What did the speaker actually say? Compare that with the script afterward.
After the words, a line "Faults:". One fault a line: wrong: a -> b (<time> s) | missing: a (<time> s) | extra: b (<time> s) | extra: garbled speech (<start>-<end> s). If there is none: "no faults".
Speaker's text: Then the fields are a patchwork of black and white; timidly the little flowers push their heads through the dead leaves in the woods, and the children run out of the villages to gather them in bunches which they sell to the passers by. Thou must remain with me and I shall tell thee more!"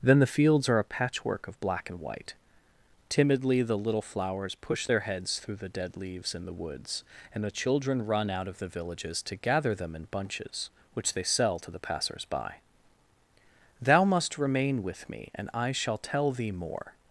Then the fields are a patchwork of black and white; timidly the little flowers push their heads through the dead leaves in the woods, and the children run out of the villages to gather them in bunches which they sell to the passers by. Thou must remain with me and I shall tell thee more!"
Faults:
no faults